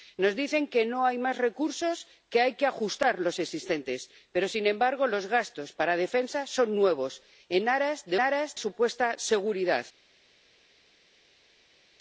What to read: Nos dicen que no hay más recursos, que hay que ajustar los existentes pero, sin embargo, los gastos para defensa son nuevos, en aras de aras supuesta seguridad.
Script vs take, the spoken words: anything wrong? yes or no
no